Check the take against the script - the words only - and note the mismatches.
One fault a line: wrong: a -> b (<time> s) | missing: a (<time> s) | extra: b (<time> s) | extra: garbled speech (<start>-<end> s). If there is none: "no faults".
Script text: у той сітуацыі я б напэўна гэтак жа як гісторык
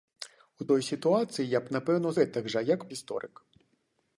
no faults